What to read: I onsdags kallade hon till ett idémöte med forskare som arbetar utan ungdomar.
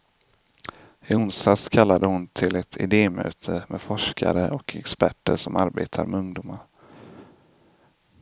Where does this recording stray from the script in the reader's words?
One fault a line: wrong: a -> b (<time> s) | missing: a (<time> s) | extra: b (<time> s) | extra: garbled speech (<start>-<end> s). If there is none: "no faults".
extra: och experter (4.5 s)
wrong: utan -> med (6.1 s)